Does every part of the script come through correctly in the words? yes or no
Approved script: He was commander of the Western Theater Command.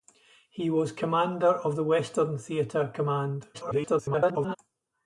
no